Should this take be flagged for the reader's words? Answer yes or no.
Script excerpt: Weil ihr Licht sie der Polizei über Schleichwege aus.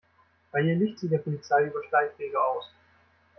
no